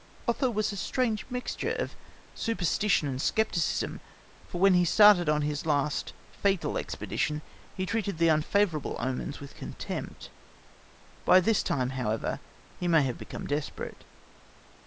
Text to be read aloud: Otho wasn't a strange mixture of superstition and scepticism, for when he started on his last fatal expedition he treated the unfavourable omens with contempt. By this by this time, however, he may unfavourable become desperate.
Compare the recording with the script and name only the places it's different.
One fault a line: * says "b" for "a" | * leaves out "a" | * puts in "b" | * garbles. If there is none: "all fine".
* says "was" for "wasn't"
* leaves out "by this"
* says "have" for "unfavourable"